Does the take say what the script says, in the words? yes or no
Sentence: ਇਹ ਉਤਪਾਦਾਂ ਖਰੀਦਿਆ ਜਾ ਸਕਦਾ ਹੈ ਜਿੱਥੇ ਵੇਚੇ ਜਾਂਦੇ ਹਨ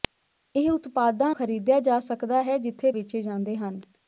yes